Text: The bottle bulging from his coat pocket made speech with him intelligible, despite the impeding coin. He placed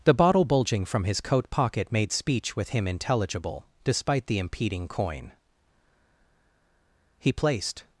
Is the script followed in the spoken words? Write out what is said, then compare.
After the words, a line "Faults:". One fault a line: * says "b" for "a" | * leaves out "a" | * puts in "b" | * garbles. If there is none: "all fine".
The bottle bulging from his coat pocket made speech with him intelligible, despite the impeding coin. He placed
Faults:
all fine